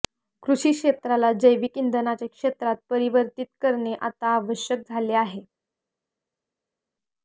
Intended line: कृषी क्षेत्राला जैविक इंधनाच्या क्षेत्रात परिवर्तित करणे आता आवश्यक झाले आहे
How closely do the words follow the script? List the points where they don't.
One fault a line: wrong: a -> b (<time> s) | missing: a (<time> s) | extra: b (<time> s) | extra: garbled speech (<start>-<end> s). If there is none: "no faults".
no faults